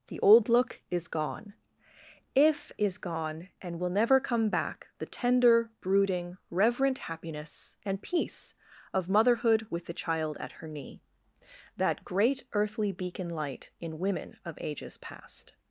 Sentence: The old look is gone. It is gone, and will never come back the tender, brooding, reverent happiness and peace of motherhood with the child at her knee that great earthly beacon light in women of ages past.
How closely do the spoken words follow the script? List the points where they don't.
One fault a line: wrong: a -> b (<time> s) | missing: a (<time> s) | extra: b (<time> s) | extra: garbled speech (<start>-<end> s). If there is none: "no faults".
wrong: It -> If (2.3 s)